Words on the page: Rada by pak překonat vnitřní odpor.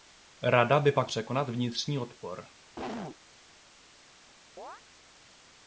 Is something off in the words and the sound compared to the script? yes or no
yes